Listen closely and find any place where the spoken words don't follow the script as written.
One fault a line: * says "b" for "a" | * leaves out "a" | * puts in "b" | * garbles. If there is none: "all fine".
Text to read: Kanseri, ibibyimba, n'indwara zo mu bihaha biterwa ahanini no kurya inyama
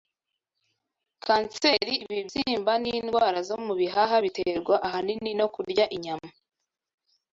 all fine